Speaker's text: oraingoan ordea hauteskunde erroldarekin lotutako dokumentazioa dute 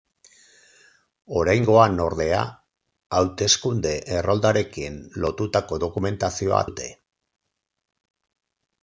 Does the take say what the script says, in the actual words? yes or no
yes